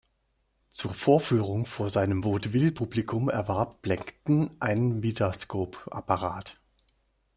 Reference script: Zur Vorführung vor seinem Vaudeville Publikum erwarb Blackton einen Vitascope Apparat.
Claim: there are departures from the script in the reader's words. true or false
false